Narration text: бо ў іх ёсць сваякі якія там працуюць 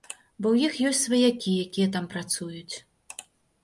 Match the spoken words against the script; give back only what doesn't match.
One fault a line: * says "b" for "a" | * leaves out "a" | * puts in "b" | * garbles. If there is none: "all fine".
all fine